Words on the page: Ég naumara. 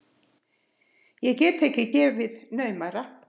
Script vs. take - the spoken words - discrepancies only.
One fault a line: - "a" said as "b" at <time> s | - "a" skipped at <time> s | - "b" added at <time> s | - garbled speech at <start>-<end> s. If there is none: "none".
- "get ekki gefið" added at 1.4 s